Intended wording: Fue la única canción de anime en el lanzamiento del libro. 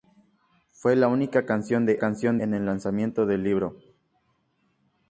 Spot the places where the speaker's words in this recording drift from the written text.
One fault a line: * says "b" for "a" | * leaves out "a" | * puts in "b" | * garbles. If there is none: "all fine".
* says "canción" for "anime"